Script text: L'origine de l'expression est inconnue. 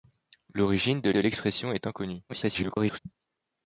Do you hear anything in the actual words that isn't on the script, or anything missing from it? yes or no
yes